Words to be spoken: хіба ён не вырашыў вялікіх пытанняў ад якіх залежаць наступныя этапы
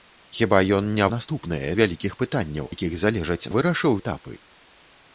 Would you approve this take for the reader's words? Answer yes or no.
no